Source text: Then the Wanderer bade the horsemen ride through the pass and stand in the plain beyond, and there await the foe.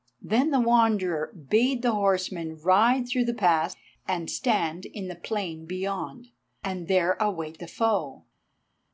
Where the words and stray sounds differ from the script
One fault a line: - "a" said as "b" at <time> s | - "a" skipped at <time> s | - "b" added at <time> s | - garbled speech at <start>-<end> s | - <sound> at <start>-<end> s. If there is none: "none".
none